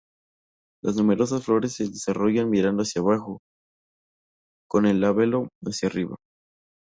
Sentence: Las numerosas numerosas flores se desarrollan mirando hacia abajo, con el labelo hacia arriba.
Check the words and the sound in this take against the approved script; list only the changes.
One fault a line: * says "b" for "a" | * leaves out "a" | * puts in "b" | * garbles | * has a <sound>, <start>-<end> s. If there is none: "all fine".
* leaves out "numerosas"